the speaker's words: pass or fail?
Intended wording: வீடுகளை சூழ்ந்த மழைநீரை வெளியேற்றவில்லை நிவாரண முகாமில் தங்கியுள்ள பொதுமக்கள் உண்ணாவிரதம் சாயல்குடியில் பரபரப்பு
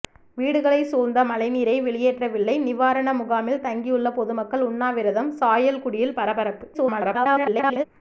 fail